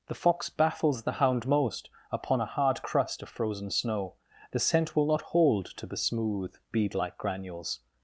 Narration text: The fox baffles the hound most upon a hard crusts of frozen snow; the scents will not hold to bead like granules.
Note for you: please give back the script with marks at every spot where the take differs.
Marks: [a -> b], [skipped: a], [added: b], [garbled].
The fox baffles the hound most upon a hard [crusts -> crust] of frozen snow; the [scents -> scent] will not hold to [added: the smooth] bead like granules.